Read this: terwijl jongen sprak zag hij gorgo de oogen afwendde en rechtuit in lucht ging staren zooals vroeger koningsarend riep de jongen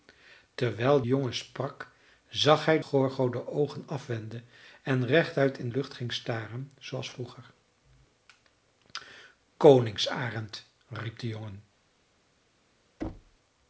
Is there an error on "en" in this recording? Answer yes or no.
no